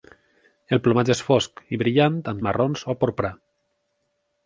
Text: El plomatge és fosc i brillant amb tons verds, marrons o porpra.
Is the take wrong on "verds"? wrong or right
wrong